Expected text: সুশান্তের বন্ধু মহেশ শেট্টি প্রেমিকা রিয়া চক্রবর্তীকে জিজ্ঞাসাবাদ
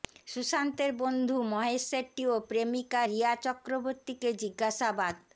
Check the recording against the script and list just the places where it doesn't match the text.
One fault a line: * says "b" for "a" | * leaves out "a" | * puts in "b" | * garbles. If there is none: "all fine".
* puts in "ও"